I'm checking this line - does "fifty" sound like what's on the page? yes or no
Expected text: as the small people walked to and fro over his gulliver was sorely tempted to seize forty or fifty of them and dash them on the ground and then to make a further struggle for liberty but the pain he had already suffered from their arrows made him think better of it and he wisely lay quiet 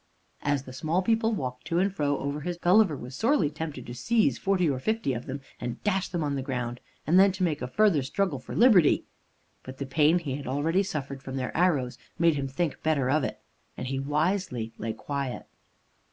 yes